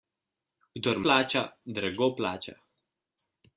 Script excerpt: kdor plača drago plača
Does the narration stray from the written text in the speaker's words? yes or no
no